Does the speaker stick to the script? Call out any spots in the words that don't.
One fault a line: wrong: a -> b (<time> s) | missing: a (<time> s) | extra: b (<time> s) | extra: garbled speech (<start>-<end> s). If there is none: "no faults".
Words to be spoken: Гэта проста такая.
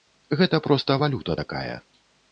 extra: валюта (1.0 s)